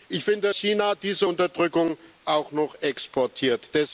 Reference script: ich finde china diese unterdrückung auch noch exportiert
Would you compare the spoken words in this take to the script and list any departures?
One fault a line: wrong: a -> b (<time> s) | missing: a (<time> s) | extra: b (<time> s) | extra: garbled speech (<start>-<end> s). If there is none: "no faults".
no faults